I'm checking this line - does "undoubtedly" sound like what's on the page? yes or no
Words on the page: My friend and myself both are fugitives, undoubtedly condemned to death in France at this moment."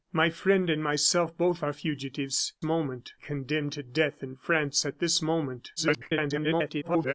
no